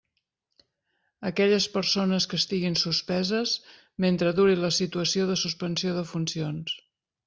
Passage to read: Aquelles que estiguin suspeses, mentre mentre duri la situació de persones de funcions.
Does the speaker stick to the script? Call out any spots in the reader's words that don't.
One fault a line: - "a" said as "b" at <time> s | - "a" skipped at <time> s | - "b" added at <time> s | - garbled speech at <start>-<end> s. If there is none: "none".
- "persones" added at 1.8 s
- "mentre" skipped at 4.3 s
- "persones" said as "suspensió" at 5.5 s